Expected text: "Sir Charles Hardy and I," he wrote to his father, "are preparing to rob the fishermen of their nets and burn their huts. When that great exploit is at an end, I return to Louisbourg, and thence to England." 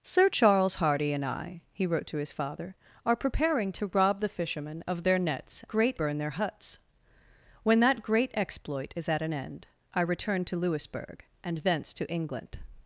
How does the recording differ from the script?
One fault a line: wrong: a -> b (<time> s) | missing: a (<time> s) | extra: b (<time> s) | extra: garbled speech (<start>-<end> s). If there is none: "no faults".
wrong: and -> great (5.7 s)